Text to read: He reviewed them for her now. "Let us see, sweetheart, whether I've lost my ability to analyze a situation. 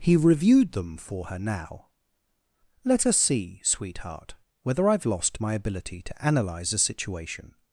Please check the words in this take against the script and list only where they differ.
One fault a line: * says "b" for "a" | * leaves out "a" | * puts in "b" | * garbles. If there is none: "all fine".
all fine